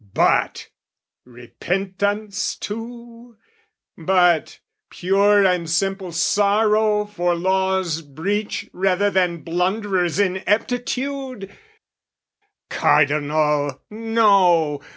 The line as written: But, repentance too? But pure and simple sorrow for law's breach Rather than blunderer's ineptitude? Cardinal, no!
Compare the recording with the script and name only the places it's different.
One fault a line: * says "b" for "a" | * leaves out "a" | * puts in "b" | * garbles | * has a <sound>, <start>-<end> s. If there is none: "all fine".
all fine